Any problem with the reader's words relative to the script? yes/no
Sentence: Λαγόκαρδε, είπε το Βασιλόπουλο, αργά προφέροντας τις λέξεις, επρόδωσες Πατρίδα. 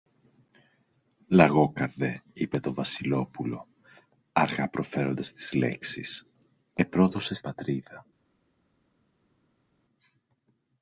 no